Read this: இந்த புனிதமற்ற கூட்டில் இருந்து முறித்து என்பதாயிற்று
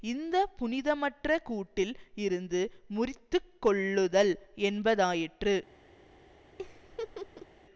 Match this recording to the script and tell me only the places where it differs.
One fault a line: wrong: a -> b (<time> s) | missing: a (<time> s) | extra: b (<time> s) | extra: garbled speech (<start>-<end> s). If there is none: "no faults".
extra: கொள்ளுதல் (3.6 s)